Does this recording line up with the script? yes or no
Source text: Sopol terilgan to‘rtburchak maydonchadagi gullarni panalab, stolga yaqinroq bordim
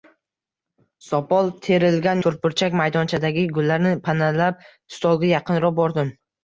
yes